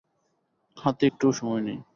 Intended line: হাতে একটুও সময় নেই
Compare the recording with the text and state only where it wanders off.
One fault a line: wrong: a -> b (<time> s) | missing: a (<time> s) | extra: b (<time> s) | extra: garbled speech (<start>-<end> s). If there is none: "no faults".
no faults